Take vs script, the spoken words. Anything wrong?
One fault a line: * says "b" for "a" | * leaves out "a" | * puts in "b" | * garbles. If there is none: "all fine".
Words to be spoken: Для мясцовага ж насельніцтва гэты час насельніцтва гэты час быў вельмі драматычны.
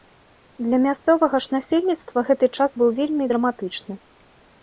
* leaves out "насельніцтва гэты час"